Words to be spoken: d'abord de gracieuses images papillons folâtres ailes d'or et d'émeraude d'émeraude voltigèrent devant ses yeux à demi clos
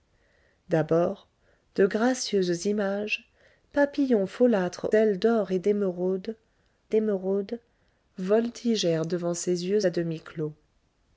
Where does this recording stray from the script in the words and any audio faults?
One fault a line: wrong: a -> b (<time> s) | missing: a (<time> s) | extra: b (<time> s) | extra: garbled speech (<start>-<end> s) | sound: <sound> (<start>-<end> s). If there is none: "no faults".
no faults